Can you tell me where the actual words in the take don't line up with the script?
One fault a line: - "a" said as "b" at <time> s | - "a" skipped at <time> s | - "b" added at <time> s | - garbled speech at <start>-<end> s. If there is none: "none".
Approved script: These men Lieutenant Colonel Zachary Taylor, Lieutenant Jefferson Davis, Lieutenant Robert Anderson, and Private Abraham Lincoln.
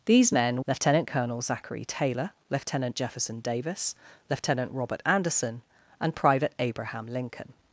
none